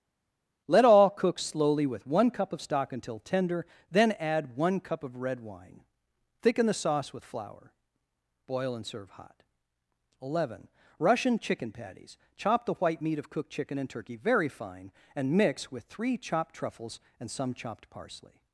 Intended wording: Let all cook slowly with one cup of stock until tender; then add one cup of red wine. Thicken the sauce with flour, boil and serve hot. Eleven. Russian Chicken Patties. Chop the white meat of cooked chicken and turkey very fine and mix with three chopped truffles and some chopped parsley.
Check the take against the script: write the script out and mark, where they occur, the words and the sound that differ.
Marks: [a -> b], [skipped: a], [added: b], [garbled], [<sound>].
Let all cook slowly with one cup of stock until tender; then add one cup of red wine. Thicken the sauce with flour, boil and serve hot. Eleven. Russian Chicken Patties. Chop the white meat of cooked chicken and turkey very fine and mix with three chopped truffles and some chopped parsley.